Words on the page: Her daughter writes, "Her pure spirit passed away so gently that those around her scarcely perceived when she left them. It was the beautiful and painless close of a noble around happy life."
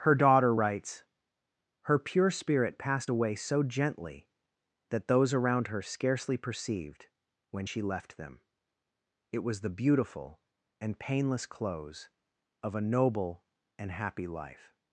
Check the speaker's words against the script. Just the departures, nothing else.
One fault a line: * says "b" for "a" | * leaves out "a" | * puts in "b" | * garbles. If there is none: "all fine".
* says "and" for "around"